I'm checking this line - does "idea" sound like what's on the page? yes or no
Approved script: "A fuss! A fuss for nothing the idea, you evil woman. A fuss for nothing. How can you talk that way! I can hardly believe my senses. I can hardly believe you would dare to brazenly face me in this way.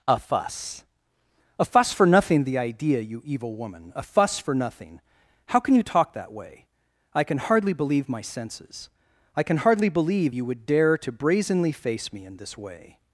yes